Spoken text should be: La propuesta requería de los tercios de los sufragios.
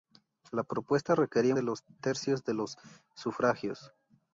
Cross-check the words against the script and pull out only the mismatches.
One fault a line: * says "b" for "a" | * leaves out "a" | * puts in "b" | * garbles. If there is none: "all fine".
all fine